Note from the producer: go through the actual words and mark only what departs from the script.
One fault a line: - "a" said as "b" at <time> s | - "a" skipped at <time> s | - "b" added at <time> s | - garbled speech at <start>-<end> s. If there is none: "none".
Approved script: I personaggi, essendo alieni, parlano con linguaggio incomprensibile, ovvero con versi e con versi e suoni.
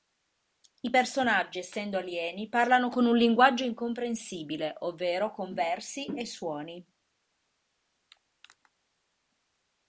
- "un" added at 3.1 s
- "con versi e" skipped at 6.3 s